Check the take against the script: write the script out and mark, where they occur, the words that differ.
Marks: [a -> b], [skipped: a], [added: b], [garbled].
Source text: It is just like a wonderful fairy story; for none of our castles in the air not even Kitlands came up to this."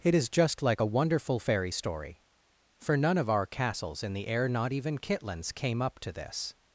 It is just like a wonderful fairy story; for none of our castles in the air not even Kitlands came up to this."